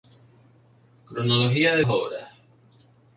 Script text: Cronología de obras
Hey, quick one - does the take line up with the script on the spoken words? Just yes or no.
yes